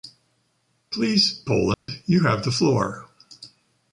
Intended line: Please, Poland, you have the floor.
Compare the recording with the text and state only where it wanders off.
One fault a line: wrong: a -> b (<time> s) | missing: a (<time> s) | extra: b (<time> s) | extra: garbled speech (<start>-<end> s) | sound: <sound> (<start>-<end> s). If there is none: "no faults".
sound: dropout (1.7-1.9 s)